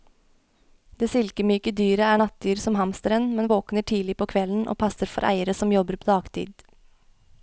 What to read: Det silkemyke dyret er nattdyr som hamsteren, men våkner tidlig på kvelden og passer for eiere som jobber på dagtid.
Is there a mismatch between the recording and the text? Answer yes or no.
no